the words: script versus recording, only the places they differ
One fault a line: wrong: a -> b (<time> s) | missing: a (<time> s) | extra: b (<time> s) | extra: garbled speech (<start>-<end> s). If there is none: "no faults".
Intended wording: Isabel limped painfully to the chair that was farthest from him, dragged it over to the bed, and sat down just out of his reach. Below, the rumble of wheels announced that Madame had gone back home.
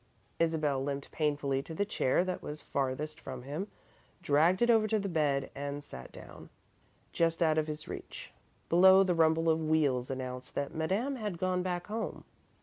no faults